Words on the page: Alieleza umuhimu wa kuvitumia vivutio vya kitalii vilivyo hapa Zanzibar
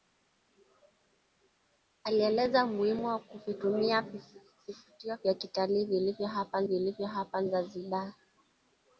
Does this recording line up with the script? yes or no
no